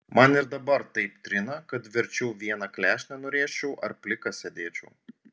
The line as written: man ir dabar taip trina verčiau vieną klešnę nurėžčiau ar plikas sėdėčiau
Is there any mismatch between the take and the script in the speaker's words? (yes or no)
yes